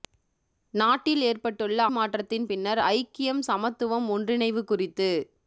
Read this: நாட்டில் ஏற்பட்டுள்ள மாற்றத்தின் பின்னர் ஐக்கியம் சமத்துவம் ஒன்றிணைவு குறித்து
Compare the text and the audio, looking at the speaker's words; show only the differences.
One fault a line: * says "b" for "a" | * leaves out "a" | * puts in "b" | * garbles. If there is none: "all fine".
all fine